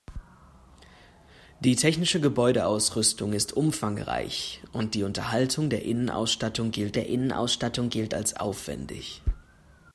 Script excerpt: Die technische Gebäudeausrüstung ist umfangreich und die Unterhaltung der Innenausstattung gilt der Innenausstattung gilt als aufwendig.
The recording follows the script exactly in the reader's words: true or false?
true